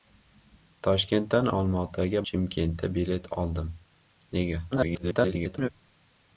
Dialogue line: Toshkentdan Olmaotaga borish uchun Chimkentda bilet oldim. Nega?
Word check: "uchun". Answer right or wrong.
wrong